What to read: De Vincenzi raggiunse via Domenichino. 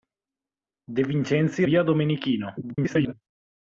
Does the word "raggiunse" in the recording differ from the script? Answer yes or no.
yes